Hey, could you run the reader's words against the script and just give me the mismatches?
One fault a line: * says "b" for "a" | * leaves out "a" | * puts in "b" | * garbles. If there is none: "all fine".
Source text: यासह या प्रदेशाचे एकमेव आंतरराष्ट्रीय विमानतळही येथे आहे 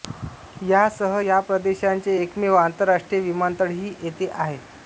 all fine